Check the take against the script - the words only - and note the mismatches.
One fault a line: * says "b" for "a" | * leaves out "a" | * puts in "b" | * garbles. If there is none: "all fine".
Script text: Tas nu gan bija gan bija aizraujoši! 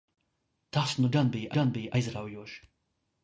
all fine